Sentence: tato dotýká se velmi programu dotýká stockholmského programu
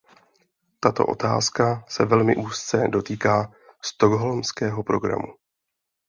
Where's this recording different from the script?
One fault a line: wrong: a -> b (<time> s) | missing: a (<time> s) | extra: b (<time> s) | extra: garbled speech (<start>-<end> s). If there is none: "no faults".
wrong: dotýká -> otázka (1.1 s)
wrong: programu -> úzce (2.3 s)